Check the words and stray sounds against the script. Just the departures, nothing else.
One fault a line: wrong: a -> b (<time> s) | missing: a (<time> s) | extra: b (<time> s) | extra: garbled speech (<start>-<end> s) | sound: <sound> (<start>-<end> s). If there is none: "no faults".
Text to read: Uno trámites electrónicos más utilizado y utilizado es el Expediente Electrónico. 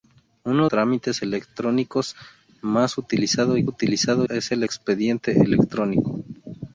no faults